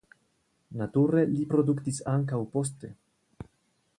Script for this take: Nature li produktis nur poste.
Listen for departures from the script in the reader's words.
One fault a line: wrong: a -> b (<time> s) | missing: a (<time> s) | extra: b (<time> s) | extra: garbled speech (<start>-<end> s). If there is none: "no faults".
wrong: nur -> ankaŭ (2.1 s)